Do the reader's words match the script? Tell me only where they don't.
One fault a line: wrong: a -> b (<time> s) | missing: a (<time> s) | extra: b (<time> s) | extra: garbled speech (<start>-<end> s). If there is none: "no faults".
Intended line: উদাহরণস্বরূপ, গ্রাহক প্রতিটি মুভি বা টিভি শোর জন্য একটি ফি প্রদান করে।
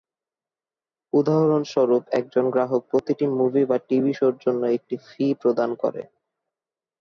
extra: একজন (2.2 s)